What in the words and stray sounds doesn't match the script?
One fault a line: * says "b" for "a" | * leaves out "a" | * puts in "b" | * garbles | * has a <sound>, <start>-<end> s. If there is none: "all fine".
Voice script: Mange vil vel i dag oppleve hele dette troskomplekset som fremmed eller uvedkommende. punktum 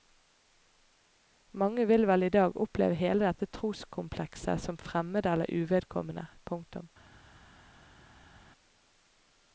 all fine